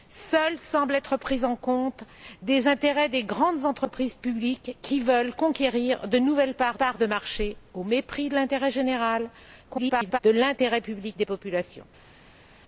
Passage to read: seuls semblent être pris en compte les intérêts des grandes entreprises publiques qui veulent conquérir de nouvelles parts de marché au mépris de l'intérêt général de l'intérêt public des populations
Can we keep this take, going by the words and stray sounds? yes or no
no